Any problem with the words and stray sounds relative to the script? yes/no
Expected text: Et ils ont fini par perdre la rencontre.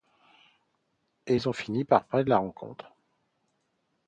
no